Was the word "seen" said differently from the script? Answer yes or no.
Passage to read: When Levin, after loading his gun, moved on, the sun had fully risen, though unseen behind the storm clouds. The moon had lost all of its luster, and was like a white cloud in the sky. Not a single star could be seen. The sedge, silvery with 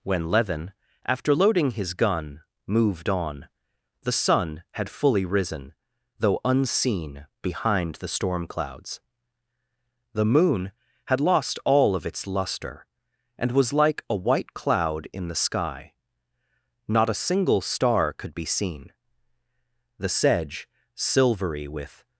no